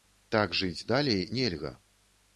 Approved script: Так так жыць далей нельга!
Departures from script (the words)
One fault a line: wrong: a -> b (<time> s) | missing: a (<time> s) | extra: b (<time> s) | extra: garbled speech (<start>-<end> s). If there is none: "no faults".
missing: так (0.6 s)